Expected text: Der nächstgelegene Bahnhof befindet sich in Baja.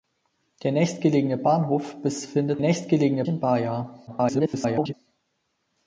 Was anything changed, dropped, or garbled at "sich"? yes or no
yes